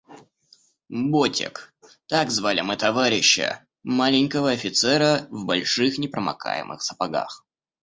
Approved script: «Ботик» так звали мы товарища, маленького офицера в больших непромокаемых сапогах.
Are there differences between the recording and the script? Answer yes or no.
no